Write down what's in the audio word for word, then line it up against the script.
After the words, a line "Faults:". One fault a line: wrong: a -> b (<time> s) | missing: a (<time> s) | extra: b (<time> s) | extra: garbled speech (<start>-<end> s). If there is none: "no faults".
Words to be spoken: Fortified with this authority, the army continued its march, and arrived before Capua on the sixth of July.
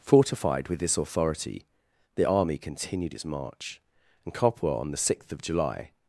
Fortified with this authority, the army continued its march, and Capua on the sixth of July.
Faults:
missing: arrived before (4.3 s)